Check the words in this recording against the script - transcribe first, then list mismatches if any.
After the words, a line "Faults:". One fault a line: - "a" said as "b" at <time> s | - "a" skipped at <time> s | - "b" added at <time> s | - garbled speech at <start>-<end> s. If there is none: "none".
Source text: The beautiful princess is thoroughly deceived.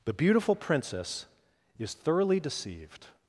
The beautiful princess is thoroughly deceived.
Faults:
none